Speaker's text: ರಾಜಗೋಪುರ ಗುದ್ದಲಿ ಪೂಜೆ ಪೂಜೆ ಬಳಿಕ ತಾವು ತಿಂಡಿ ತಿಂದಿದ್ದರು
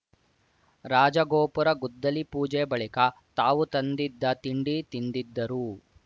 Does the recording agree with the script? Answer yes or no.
no